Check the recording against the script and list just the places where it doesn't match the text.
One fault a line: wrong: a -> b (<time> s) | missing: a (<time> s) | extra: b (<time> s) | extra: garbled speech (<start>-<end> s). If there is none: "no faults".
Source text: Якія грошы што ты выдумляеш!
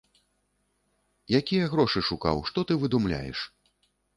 extra: шукаў (2.1 s)